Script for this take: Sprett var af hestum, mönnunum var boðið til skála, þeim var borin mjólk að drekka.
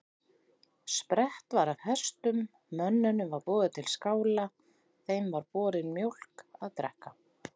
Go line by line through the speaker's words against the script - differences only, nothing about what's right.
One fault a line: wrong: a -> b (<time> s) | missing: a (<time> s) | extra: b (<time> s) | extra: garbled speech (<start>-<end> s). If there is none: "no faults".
no faults